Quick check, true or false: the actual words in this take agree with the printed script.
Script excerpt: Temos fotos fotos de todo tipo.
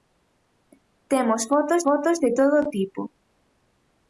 true